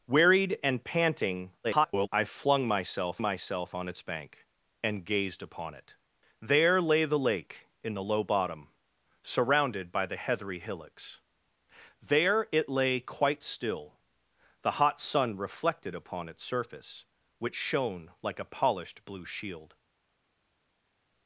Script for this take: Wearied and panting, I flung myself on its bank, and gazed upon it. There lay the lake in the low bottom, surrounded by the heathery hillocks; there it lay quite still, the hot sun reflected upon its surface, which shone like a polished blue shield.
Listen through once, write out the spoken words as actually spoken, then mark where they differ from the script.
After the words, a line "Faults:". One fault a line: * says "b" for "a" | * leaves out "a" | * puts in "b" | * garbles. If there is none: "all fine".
Wearied and panting, [garbled] I flung myself myself on its bank, and gazed upon it. There lay the lake in the low bottom, surrounded by the heathery hillocks; there it lay quite still, the hot sun reflected upon its surface, which shone like a polished blue shield.
Faults:
* garbles
* puts in "myself"